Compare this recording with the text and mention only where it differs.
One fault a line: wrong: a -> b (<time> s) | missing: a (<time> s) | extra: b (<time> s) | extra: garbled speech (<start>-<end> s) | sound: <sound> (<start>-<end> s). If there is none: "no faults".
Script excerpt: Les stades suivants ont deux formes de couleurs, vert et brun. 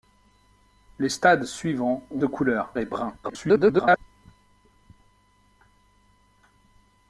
missing: deux formes (2.2 s)
missing: vert (2.7 s)
extra: garbled speech (3.2-4.0 s)